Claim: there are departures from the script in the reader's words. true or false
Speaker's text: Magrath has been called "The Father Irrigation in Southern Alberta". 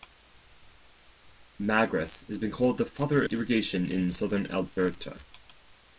false